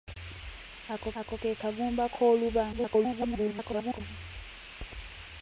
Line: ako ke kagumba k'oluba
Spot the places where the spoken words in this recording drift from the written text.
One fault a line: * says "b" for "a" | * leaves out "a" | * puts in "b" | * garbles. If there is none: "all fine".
* puts in "ako"
* garbles